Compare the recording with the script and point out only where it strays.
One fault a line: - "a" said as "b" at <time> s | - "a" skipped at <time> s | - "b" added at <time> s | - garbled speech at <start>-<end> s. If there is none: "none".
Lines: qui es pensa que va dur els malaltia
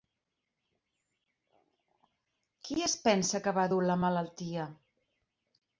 - "els" said as "la" at 3.9 s